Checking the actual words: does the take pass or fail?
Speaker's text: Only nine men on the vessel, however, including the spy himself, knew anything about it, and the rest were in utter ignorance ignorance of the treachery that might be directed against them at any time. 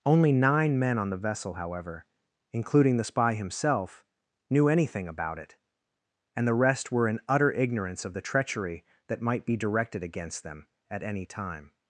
fail